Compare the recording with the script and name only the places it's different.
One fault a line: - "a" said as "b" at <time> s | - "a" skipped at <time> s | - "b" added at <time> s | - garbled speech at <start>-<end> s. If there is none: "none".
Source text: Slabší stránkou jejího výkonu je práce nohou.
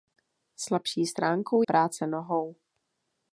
- "jejího výkonu je" skipped at 1.6 s